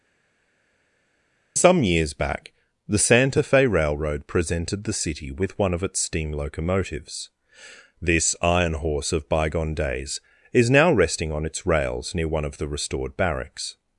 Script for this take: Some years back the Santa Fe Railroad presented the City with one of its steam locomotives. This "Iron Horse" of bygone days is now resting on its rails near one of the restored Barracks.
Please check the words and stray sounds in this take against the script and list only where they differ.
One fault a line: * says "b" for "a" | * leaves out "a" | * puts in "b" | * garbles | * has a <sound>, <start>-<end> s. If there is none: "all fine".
all fine